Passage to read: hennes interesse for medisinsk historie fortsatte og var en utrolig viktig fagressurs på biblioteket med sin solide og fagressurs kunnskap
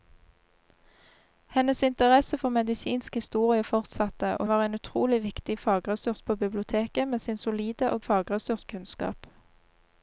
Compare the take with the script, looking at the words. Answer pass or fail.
pass